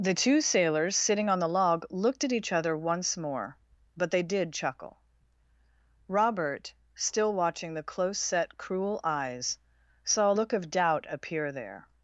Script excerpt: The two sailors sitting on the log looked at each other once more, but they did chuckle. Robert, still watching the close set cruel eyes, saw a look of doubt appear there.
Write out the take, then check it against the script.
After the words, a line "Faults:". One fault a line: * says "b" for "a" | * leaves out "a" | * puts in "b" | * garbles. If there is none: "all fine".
The two sailors sitting on the log looked at each other once more, but they did chuckle. Robert, still watching the close set cruel eyes, saw a look of doubt appear there.
Faults:
all fine